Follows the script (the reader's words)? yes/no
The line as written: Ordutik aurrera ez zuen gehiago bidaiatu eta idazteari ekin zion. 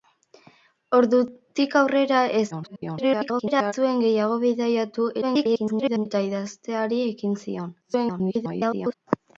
no